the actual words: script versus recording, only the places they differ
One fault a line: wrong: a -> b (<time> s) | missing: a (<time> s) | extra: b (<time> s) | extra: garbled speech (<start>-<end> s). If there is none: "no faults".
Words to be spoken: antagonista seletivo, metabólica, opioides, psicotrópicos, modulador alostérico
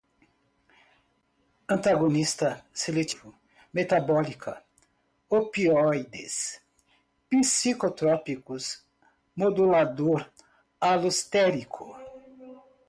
no faults